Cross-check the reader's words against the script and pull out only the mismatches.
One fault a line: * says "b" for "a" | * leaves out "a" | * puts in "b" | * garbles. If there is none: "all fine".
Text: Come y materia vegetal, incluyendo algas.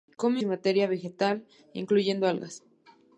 all fine